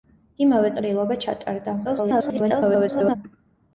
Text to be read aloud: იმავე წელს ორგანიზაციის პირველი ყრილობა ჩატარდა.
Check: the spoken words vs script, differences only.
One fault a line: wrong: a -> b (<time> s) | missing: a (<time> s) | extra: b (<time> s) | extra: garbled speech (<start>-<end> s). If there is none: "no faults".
missing: წელს ორგანიზაციის პირველი (0.7 s)
extra: garbled speech (1.8-3.2 s)